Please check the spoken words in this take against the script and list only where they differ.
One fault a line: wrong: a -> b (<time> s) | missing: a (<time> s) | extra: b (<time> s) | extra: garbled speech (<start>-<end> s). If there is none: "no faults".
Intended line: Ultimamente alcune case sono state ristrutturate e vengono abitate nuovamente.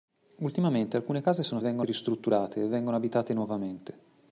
wrong: state -> vengono (1.6 s)